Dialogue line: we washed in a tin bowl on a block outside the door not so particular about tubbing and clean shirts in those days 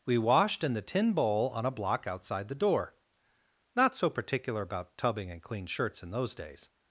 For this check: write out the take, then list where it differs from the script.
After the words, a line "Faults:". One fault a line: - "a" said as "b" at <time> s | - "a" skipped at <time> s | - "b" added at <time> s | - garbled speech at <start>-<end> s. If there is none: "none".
we washed in the tin bowl on a block outside the door not so particular about tubbing and clean shirts in those days
Faults:
- "a" said as "the" at 0.7 s